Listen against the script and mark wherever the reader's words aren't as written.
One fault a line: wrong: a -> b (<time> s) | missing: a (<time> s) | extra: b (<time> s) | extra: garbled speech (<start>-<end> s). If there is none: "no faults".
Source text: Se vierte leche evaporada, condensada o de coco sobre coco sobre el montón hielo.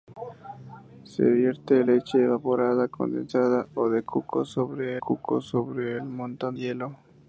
no faults